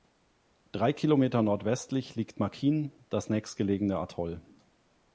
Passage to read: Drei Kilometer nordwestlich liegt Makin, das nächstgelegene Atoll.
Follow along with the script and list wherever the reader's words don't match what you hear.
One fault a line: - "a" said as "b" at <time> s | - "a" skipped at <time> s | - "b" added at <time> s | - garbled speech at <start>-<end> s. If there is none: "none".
none